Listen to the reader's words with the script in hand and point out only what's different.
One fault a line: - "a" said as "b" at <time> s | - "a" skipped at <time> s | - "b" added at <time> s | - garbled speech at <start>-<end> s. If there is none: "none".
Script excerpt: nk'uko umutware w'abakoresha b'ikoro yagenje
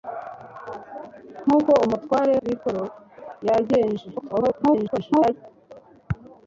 - "w'abakoresha" skipped at 2.4 s
- garbled speech at 4.2-5.3 s